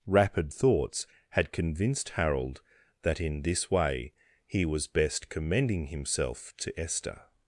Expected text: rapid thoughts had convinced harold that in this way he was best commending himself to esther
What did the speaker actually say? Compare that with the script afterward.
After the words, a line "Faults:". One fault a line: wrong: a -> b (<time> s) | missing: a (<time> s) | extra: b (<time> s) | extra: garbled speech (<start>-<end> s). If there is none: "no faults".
rapid thoughts had convinced harold that in this way he was best commending himself to esther
Faults:
no faults